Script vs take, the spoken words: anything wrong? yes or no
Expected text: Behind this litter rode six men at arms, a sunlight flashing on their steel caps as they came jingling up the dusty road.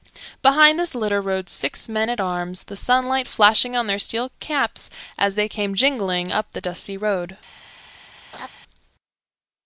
yes